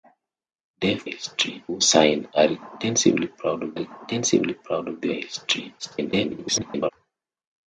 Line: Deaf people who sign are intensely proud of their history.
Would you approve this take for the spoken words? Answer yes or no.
no